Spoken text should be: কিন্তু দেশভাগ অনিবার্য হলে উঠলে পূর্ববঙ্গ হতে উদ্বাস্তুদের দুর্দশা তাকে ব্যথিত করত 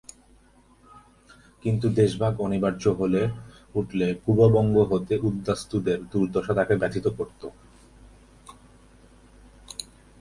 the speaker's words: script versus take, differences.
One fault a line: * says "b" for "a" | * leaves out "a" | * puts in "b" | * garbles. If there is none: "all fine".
all fine